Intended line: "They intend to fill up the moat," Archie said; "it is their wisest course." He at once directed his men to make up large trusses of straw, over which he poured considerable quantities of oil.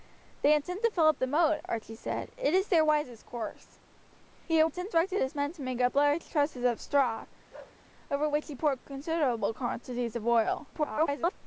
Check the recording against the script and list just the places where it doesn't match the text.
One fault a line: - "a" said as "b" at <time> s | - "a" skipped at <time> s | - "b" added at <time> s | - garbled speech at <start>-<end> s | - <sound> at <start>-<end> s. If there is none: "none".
- "once" said as "intend" at 4.6 s
- bark at 7.5-7.8 s
- garbled speech at 10.7-11.3 s